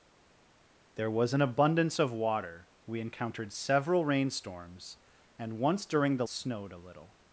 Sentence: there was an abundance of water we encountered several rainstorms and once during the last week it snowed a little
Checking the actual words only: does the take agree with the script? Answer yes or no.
no